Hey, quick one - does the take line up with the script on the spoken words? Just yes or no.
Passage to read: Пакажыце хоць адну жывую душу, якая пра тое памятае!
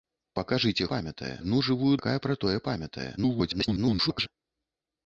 no